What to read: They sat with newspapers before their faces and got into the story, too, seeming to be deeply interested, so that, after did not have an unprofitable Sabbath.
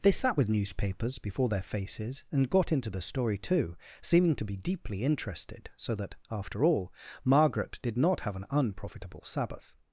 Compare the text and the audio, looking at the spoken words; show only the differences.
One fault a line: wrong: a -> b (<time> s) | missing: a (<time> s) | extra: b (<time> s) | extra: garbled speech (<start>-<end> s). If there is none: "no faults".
extra: all Margaret (6.6 s)